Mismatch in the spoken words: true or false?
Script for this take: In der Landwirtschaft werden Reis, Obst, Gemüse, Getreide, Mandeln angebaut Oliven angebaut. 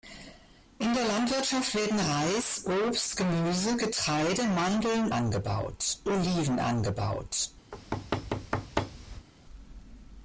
false